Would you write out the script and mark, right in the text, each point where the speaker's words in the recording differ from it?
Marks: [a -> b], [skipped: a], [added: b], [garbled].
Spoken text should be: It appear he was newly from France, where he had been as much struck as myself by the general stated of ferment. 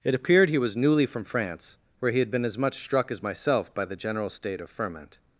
It [appear -> appeared] he was newly from France, where he had been as much struck as myself by the general [stated -> state] of ferment.